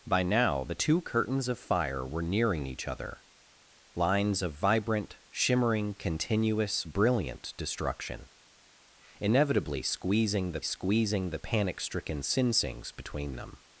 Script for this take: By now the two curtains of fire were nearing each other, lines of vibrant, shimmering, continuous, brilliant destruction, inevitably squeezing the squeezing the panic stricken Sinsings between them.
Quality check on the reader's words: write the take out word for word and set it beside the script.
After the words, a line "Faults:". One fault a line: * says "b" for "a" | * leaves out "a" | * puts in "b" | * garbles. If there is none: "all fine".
By now the two curtains of fire were nearing each other, lines of vibrant, shimmering, continuous, brilliant destruction, inevitably squeezing the squeezing the panic stricken Sinsings between them.
Faults:
all fine